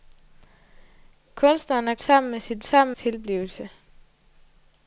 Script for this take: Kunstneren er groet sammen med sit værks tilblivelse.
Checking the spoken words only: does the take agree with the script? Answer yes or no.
no